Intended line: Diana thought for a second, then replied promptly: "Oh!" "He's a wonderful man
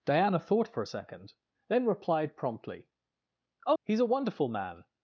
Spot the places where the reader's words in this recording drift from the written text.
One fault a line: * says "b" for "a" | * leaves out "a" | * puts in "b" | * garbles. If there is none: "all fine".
all fine